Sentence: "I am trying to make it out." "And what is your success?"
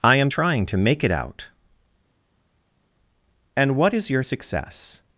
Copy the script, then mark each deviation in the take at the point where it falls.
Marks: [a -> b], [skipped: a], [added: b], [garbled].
"I am trying to make it out." "And what is your success?"